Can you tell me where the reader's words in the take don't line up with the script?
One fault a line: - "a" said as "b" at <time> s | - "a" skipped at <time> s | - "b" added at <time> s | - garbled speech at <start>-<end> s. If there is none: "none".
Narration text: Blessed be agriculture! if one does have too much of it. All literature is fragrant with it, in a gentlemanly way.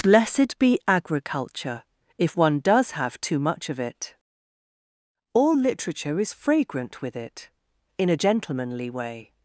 none